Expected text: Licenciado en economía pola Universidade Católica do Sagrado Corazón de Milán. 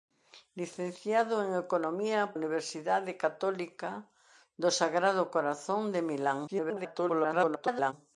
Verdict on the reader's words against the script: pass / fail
fail